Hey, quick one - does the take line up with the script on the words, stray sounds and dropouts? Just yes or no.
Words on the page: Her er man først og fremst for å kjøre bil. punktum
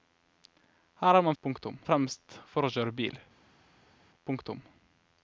no